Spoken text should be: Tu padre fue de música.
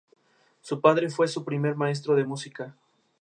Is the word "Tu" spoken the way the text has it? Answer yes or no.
no